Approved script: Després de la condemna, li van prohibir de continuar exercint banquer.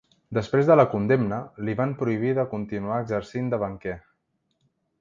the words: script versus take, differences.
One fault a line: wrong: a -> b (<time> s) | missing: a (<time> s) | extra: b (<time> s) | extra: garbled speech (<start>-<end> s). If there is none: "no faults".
extra: de (3.5 s)